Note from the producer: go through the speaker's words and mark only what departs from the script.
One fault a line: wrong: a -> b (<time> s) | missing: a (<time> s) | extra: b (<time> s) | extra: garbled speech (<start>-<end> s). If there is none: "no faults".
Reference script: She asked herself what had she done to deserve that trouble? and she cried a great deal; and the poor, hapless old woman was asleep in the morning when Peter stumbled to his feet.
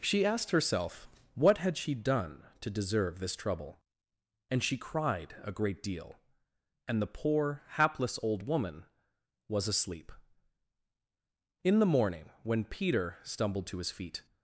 wrong: that -> this (3.2 s)